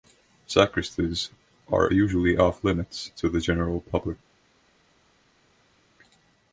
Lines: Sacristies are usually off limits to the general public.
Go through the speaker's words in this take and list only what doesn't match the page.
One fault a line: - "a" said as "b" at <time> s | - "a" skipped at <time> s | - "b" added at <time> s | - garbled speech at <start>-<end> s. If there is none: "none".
none